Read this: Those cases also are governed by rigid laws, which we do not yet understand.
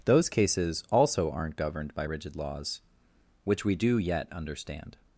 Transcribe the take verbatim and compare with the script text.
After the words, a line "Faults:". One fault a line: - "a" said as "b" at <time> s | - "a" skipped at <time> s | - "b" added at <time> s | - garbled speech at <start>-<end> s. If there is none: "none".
Those cases also aren't governed by rigid laws, which we do yet understand.
Faults:
- "are" said as "aren't" at 1.3 s
- "not" skipped at 4.0 s